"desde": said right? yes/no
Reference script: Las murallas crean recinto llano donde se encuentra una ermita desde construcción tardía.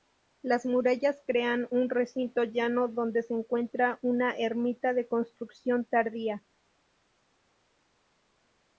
no